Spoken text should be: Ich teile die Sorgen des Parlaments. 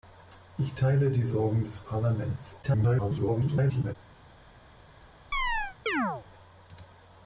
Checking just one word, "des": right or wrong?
right